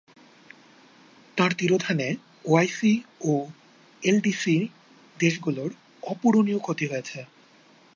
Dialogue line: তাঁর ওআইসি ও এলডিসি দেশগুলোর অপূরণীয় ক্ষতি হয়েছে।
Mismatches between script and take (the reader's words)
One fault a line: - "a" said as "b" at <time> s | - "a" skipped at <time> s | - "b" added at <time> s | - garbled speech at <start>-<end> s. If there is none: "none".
- "তিরোধানে" added at 1.5 s